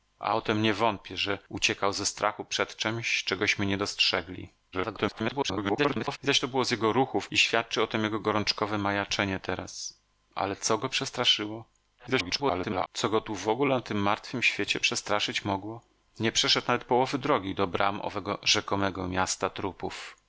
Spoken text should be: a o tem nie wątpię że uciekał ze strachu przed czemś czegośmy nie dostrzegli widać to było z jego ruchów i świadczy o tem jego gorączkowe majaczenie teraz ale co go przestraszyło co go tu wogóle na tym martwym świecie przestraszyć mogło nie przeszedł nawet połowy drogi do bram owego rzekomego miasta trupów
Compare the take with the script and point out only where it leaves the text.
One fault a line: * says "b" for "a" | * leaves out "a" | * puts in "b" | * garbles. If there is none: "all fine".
* garbles
* garbles